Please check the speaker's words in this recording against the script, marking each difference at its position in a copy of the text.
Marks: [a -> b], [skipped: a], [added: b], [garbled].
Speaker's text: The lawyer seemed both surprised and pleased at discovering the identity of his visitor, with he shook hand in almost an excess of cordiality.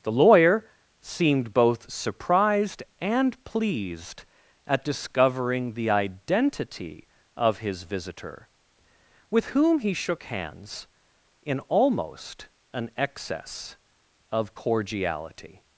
The lawyer seemed both surprised and pleased at discovering the identity of his visitor, with [added: whom] he shook [hand -> hands] in almost an excess of cordiality.